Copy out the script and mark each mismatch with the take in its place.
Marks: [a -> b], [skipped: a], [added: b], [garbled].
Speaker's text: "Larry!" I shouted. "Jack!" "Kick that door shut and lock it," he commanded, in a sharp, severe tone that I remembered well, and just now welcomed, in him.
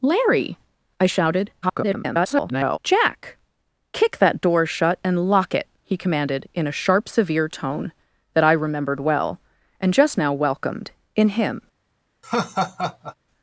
"Larry!" I shouted. [garbled] "Jack!" "Kick that door shut and lock it," he commanded, in a sharp, severe tone that I remembered well, and just now welcomed, in him.